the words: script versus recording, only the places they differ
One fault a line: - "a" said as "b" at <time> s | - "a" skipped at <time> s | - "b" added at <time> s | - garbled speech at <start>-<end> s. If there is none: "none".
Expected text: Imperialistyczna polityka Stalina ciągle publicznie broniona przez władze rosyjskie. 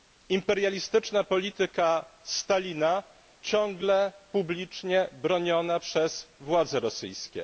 none